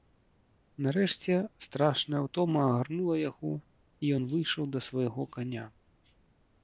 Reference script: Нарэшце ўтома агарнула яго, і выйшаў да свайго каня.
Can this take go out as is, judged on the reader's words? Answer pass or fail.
fail